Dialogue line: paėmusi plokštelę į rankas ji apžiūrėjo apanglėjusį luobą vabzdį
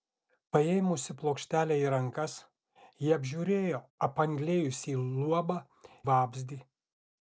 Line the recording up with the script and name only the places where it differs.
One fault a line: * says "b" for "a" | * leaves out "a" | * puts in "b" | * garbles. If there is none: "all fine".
all fine